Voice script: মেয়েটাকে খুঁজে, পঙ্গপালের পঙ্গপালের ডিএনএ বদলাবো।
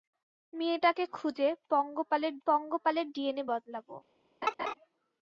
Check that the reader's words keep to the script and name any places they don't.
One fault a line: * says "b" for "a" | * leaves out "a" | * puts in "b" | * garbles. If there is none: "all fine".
all fine